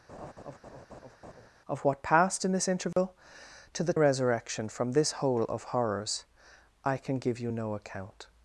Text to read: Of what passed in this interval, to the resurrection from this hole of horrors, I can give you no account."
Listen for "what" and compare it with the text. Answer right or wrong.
right